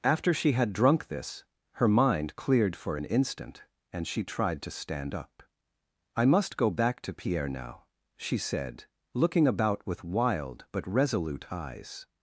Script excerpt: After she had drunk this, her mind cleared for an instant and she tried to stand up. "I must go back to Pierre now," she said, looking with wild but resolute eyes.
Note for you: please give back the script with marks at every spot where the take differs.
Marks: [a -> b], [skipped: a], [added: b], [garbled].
After she had drunk this, her mind cleared for an instant and she tried to stand up. "I must go back to Pierre now," she said, looking [added: about] with wild but resolute eyes.